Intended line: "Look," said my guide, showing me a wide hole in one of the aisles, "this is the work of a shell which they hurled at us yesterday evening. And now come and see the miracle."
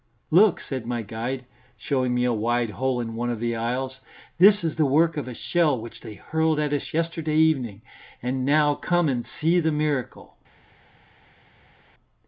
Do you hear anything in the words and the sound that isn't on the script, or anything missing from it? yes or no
no